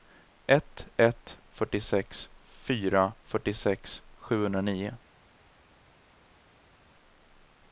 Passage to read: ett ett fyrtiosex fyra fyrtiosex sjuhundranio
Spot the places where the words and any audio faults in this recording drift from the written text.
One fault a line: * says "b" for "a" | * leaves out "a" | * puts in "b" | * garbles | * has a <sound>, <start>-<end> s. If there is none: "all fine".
all fine